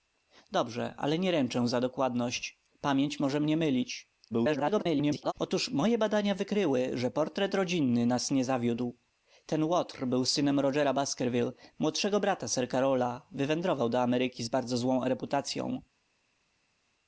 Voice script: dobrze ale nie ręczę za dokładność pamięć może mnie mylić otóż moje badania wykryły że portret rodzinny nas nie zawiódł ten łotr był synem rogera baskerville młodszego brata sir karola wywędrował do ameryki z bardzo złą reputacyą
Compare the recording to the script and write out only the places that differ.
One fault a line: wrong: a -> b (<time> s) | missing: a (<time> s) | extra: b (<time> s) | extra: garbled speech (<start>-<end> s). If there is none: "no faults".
extra: garbled speech (4.3-5.3 s)